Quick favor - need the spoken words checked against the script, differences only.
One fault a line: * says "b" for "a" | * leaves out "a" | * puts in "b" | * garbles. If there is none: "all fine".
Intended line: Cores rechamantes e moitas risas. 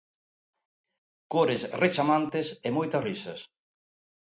all fine